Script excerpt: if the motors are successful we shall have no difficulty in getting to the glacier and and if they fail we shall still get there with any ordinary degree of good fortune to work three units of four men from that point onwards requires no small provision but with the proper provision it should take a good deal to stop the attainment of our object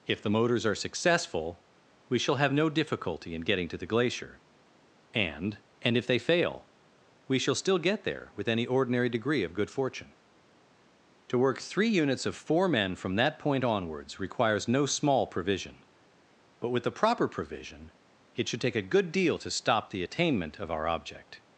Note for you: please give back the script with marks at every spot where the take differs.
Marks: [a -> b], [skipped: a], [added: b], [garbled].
if the motors are successful we shall have no difficulty in getting to the glacier and and if they fail we shall still get there with any ordinary degree of good fortune to work three units of four men from that point onwards requires no small provision but with the proper provision it should take a good deal to stop the attainment of our object